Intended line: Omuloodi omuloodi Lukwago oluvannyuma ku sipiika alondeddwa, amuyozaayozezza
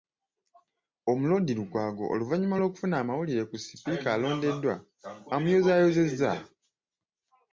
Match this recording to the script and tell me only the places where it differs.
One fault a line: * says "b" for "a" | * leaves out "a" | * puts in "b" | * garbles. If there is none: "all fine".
* leaves out "omuloodi"
* puts in "lw'okufuna amawulire"